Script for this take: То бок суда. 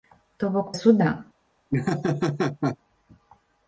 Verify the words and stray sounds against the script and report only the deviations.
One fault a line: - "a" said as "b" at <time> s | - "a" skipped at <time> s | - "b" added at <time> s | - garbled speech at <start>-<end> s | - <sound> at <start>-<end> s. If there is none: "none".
- laugh at 1.7-2.8 s